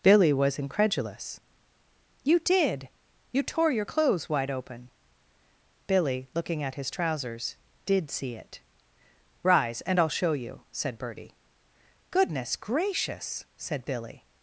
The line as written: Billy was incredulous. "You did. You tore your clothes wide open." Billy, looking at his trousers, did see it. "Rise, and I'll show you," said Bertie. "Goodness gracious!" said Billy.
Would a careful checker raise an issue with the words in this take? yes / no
no